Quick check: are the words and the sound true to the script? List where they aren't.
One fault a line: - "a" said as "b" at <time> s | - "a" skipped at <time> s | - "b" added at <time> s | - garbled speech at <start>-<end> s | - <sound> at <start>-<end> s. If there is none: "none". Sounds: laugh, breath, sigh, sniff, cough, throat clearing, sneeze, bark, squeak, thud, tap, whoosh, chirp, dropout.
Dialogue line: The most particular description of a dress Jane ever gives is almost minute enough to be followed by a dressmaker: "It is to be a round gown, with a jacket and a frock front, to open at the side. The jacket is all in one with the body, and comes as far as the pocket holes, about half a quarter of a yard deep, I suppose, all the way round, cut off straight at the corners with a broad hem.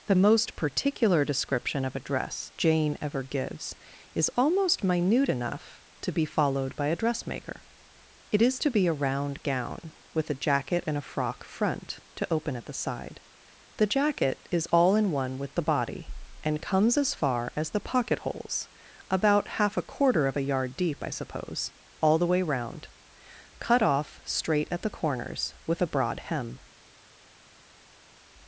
none